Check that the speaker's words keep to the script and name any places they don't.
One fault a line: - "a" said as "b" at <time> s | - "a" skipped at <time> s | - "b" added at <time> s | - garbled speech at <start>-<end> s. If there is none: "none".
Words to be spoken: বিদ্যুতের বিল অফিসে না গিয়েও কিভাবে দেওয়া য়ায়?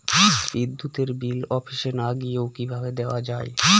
none